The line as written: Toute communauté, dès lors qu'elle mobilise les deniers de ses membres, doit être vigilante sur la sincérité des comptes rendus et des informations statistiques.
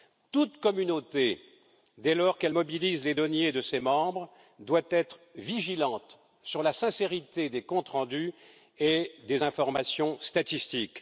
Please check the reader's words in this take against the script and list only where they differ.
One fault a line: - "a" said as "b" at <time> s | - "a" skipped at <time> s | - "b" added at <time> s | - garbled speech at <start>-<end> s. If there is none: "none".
none